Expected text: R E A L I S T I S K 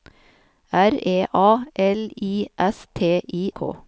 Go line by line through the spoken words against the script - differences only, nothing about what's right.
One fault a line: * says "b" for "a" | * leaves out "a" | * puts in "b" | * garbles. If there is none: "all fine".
* leaves out "S"